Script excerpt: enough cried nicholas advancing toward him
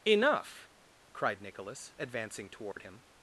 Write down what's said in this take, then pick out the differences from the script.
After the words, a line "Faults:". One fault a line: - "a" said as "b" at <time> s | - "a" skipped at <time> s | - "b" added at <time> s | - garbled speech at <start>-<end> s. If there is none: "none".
enough cried nicholas advancing toward him
Faults:
none